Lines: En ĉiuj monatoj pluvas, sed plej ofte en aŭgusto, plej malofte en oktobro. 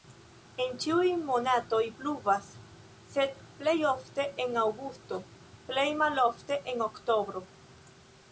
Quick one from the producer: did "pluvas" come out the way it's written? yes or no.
yes